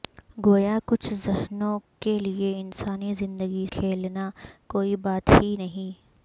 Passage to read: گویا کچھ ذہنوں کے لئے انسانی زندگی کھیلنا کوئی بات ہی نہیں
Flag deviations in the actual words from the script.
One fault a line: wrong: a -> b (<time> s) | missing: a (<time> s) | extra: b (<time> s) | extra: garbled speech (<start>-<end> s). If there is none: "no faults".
no faults